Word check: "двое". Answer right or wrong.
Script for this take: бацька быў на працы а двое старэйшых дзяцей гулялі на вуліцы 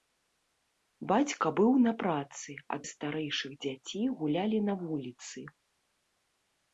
wrong